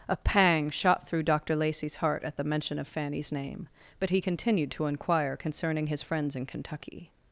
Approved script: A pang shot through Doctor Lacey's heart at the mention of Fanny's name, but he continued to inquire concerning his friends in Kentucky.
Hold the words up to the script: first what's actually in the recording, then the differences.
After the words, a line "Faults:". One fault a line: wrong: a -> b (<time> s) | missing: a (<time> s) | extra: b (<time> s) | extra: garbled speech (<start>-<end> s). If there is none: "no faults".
A pang shot through Doctor Lacey's heart at the mention of Fanny's name, but he continued to inquire concerning his friends in Kentucky.
Faults:
no faults